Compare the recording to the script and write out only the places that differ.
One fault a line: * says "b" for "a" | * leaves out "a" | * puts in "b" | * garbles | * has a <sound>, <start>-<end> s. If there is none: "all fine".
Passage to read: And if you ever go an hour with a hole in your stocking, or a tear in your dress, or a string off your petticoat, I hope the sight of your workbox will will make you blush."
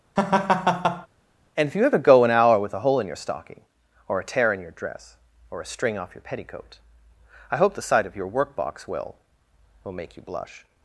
* has a laugh, 0.2-1.1 s